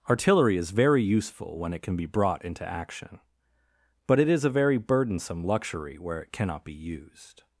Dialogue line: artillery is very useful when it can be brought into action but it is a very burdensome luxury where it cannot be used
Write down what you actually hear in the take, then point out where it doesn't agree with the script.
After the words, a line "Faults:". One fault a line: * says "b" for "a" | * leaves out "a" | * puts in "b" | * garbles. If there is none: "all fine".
artillery is very useful when it can be brought into action but it is a very burdensome luxury where it cannot be used
Faults:
all fine